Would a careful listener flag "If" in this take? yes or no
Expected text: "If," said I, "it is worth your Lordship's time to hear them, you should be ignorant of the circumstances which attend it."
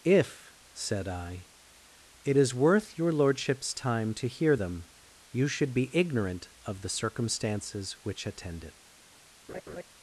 no